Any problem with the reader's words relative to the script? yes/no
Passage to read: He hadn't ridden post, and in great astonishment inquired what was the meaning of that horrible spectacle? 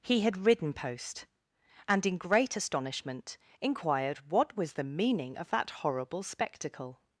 yes